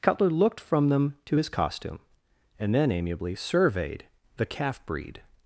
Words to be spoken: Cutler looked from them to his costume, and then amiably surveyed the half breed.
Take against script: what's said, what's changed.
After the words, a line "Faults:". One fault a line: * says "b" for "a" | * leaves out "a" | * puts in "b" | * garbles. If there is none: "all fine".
Cutler looked from them to his costume, and then amiably surveyed the calf breed.
Faults:
* says "calf" for "half"